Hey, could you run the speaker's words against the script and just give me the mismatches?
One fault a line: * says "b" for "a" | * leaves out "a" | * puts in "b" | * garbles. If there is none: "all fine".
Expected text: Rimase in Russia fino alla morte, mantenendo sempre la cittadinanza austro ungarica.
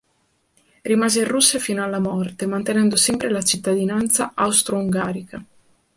all fine